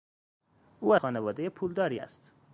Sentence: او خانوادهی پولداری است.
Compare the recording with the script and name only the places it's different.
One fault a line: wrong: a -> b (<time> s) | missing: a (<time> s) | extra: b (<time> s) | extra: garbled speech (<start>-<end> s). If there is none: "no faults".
no faults